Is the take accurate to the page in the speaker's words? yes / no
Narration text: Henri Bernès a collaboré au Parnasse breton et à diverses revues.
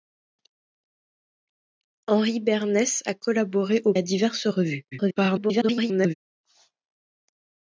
no